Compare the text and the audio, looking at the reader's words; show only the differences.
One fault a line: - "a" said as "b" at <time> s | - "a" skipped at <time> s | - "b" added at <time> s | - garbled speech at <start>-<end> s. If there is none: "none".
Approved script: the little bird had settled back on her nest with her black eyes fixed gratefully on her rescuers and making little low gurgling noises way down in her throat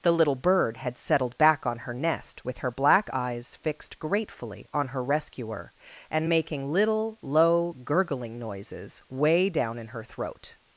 - "rescuers" said as "rescuer" at 5.0 s